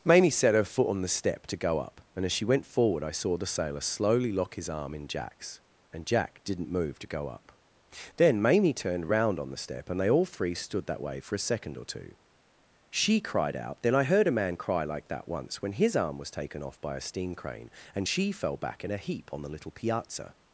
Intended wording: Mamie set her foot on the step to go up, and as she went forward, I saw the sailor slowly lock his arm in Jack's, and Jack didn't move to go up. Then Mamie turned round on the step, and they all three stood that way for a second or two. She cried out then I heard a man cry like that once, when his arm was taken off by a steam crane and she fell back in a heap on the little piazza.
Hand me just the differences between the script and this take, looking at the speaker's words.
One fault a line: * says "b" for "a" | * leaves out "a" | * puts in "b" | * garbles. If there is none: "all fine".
all fine